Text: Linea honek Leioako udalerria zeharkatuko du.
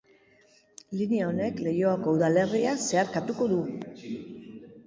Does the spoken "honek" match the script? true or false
true